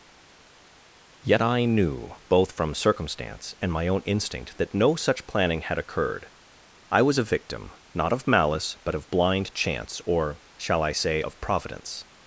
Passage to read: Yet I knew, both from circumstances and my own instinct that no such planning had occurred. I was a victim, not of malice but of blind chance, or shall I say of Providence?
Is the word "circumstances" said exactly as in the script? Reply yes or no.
no